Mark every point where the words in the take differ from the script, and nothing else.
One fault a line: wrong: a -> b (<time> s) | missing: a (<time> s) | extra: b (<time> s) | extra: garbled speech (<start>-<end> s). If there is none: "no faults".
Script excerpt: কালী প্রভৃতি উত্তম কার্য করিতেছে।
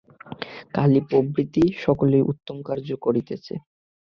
extra: সকলেই (1.8 s)